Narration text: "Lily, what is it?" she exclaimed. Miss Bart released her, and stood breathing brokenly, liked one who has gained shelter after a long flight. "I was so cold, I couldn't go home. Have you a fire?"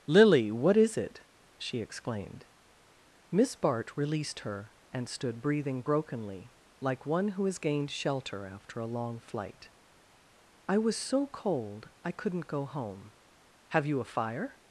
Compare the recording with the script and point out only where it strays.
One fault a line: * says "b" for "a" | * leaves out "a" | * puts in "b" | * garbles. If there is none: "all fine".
* says "like" for "liked"